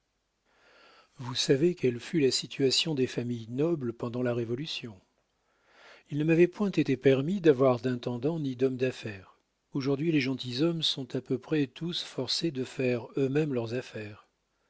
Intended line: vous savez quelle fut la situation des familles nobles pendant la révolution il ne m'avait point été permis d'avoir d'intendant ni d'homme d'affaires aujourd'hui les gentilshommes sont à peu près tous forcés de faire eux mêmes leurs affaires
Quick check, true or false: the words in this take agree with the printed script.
true